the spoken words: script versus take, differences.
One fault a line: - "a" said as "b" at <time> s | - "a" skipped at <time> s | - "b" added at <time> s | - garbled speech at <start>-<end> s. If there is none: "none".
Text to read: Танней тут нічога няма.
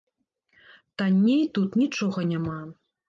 none